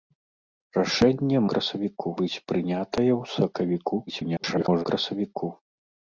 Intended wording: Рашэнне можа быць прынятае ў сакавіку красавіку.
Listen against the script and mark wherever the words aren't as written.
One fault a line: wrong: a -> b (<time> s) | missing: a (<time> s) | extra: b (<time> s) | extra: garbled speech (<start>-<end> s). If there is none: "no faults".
wrong: можа -> красавіку (1.6 s)
extra: garbled speech (4.1-4.9 s)